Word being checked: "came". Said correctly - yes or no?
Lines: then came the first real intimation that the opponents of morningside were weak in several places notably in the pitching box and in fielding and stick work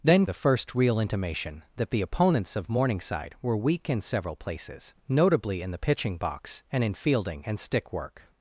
no